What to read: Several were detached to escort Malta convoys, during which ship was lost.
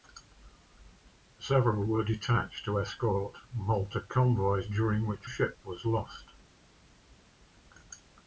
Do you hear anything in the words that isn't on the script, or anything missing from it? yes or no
no